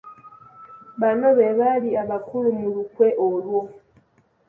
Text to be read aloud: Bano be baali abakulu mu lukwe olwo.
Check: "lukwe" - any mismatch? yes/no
no